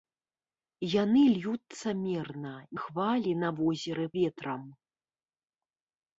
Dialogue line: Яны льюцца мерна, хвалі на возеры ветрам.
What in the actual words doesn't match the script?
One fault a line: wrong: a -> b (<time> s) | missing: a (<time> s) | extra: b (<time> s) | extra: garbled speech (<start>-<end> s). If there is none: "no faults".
no faults